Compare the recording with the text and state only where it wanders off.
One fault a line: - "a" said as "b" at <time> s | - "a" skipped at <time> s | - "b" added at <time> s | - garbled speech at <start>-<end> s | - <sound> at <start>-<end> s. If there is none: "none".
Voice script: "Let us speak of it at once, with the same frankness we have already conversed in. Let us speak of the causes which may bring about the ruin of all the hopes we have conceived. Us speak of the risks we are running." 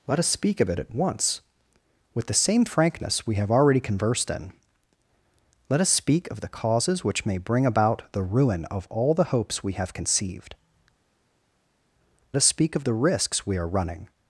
none